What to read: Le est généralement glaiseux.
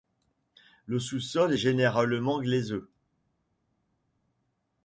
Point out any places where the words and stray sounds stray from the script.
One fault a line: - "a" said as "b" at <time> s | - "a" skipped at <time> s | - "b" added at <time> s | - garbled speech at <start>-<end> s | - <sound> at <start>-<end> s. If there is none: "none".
- "sous sol" added at 1.0 s